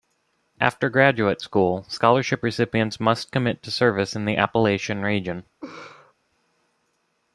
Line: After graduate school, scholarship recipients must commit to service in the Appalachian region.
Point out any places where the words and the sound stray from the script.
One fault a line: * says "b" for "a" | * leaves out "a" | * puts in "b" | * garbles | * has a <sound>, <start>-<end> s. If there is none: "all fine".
* has a laugh, 5.6-6.1 s